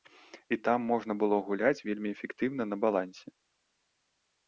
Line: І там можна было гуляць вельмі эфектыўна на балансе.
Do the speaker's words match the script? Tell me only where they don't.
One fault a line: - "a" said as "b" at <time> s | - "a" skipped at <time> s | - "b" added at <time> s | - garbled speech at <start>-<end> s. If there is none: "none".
none